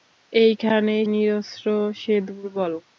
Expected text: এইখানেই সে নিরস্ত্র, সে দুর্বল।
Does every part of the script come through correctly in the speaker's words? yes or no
no